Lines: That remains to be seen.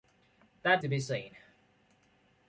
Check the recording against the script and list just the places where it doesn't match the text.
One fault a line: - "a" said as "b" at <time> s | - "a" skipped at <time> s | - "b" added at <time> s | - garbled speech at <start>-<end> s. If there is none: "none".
- "remains" skipped at 0.8 s